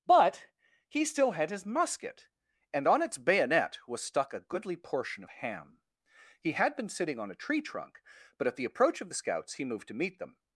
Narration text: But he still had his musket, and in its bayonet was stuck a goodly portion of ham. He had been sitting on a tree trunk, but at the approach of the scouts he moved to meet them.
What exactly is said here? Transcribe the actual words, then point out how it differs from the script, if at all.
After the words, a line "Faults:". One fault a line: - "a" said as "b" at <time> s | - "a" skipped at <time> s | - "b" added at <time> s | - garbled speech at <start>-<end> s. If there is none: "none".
But he still had his musket, and on its bayonet was stuck a goodly portion of ham. He had been sitting on a tree trunk, but at the approach of the scouts he moved to meet them.
Faults:
- "in" said as "on" at 2.9 s